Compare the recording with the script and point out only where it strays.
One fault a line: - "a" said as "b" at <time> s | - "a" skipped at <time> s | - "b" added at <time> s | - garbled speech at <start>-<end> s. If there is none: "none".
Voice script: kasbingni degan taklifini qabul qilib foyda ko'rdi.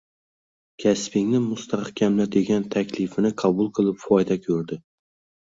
- "mustahkamla" added at 1.4 s